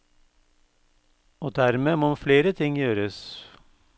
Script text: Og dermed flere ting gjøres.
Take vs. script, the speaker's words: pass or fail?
fail